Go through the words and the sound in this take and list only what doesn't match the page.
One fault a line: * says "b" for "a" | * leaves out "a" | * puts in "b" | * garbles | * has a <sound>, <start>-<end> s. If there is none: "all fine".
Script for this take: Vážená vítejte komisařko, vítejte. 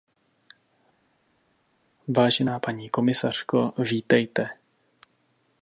* says "paní" for "vítejte"